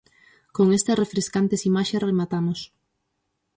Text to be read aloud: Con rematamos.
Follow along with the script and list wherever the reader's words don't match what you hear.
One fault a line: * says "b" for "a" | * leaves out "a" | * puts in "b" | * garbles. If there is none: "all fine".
* puts in "estas refrescantes imaxes"